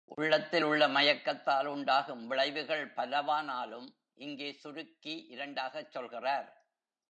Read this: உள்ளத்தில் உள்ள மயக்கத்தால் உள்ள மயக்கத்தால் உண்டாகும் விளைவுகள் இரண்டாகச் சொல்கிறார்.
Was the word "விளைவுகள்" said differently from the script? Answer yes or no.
yes